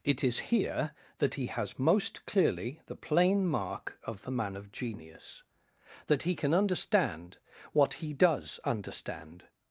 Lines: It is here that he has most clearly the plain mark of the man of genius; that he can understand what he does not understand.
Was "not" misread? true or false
true